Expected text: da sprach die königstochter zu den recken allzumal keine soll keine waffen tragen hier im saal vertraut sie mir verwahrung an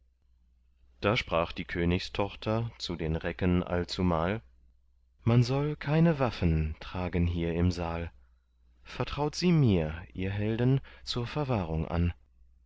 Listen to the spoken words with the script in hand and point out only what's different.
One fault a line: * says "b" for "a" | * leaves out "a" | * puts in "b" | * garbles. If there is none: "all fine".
* says "man" for "keine"
* puts in "ihr helden zur"